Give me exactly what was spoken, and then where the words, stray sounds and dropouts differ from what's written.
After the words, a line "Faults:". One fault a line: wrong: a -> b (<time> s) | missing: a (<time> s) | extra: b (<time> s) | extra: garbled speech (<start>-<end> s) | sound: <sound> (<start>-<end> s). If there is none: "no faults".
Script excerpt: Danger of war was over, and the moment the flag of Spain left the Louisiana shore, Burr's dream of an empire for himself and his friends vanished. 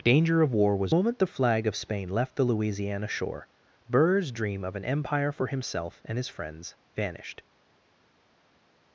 Danger of war was moment the flag of Spain left the Louisiana shore, Burr's dream of an empire for himself and his friends vanished.
Faults:
missing: over and the (0.9 s)